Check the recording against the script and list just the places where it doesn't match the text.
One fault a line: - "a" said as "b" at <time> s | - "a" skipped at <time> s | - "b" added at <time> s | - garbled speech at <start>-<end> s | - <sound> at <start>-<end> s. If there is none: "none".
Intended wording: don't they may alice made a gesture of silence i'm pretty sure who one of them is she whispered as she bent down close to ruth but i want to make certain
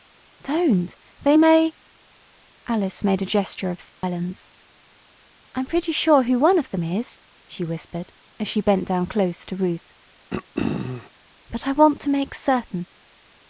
- dropout at 3.9-4.0 s
- throat clearing at 10.3-11.1 s